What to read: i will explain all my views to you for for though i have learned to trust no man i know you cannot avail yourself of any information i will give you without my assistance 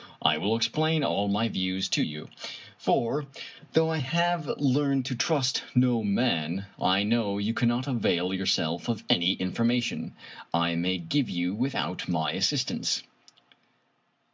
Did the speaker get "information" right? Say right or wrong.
right